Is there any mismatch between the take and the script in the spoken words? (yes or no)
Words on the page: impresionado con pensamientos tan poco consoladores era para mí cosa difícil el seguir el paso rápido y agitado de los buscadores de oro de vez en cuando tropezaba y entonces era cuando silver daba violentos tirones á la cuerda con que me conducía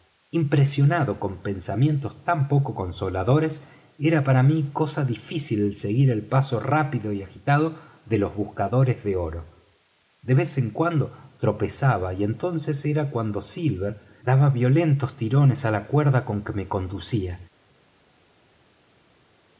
no